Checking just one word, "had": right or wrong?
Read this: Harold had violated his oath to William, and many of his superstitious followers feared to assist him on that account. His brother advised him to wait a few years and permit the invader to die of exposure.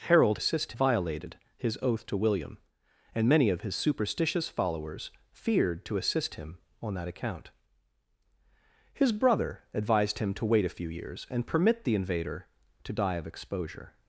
wrong